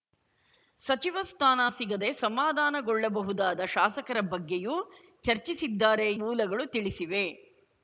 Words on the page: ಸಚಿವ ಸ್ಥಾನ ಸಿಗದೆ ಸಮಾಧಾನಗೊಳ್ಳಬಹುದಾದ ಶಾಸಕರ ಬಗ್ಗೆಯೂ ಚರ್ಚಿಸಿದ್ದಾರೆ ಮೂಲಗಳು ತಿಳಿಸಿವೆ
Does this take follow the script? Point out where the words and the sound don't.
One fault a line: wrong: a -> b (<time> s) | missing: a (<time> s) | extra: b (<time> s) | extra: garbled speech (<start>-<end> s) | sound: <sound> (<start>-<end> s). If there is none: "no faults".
no faults